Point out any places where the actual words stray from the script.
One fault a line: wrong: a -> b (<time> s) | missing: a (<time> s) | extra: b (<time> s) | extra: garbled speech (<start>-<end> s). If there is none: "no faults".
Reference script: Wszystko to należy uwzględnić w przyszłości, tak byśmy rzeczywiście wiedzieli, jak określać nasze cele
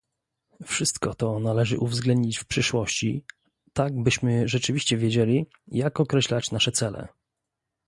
no faults